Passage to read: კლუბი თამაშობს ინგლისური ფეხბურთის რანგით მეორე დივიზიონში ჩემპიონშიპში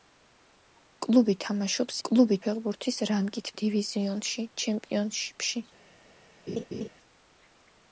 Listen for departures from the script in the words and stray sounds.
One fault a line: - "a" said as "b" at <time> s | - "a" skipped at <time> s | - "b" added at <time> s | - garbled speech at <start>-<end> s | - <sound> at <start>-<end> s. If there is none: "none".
- "ინგლისური" said as "კლუბი" at 2.1 s
- "მეორე" skipped at 3.5 s
- laugh at 6.5-6.9 s